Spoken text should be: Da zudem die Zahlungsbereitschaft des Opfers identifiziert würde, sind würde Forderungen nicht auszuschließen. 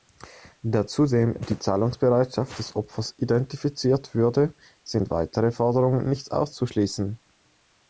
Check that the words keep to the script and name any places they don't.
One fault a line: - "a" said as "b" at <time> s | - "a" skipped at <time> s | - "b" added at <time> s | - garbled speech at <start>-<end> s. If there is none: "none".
- "würde" said as "weitere" at 5.1 s